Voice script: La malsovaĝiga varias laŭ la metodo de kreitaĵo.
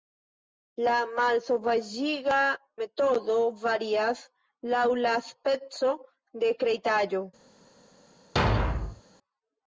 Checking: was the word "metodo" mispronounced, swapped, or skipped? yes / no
yes